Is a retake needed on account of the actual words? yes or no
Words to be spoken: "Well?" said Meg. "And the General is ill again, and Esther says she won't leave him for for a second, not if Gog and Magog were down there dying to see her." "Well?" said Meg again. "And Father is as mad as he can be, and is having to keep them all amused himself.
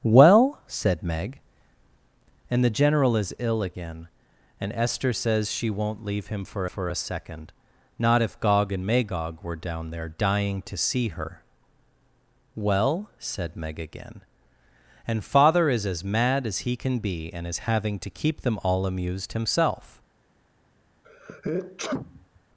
no